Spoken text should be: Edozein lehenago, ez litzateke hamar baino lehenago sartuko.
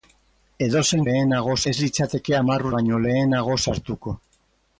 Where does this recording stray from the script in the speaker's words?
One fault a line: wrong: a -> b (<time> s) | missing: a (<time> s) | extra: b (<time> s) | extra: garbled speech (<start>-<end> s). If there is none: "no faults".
no faults